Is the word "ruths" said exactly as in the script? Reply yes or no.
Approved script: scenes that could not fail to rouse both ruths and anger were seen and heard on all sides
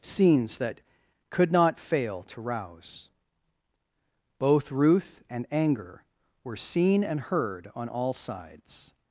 no